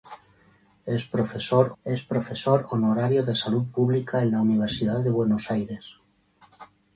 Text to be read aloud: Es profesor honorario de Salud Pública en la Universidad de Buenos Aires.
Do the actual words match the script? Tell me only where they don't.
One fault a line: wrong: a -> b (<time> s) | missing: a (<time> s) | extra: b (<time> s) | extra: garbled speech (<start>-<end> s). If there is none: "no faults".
extra: es profesor (1.8 s)